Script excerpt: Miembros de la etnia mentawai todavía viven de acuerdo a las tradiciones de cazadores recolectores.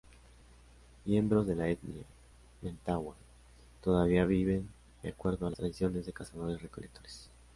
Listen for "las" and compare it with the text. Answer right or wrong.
wrong